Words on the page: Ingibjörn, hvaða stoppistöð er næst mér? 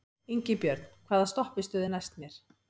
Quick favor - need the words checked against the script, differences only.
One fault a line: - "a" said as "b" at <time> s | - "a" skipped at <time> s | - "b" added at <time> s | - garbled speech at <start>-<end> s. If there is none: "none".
none